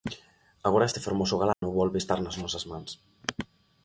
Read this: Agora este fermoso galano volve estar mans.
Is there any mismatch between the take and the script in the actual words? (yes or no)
yes